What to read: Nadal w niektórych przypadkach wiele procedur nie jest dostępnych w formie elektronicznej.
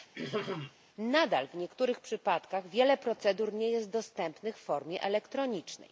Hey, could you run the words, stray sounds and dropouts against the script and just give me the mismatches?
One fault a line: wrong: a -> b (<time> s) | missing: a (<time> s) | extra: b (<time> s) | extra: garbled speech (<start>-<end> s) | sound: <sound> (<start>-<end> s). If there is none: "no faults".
sound: throat clearing (0.1-0.7 s)